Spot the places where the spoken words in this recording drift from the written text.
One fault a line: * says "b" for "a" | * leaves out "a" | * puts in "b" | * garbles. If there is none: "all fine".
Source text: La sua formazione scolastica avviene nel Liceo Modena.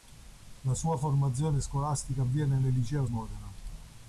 all fine